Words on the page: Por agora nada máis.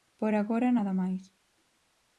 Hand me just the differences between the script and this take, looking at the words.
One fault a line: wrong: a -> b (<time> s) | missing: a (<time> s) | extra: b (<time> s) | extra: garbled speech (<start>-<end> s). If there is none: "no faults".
no faults